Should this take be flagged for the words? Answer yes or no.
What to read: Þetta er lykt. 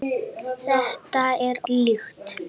no